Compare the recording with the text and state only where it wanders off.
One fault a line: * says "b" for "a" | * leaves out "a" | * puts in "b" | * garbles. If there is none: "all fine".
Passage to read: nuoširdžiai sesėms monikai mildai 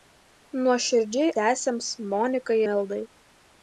all fine